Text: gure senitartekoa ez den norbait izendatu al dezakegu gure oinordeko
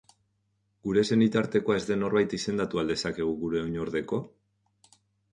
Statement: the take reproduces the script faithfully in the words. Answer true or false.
true